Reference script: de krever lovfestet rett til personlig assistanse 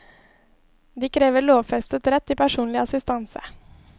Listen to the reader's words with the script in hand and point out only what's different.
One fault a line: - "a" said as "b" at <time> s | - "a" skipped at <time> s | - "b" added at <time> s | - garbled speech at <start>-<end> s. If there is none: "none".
none